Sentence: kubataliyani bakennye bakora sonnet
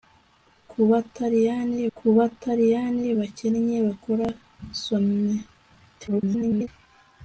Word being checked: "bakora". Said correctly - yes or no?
yes